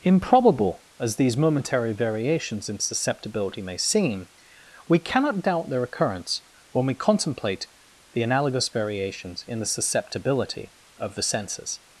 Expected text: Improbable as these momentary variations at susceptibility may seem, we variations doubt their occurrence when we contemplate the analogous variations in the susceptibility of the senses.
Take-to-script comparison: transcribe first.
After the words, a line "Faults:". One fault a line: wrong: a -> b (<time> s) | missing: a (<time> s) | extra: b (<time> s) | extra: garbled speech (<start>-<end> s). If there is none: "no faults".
Improbable as these momentary variations in susceptibility may seem, we cannot doubt their occurrence when we contemplate the analogous variations in the susceptibility of the senses.
Faults:
wrong: at -> in (2.7 s)
wrong: variations -> cannot (5.0 s)